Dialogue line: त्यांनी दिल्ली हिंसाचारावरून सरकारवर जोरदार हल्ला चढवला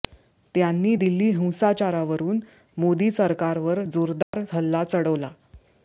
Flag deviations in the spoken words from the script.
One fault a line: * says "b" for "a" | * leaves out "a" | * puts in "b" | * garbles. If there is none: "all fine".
* puts in "मोदी"